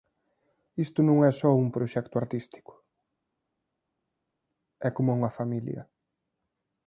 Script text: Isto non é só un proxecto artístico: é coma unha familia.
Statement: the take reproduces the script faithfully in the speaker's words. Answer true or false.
true